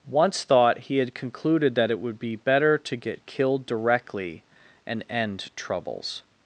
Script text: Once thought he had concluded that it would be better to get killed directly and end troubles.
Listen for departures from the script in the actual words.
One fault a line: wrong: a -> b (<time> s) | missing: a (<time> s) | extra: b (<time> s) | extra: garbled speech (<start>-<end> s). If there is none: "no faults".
no faults